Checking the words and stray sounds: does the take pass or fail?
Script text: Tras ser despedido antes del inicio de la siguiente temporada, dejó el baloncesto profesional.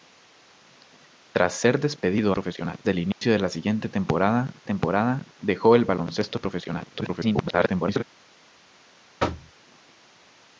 fail